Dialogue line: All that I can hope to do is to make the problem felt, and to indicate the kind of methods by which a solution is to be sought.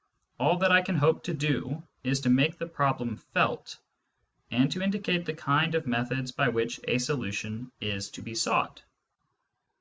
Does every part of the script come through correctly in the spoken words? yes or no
yes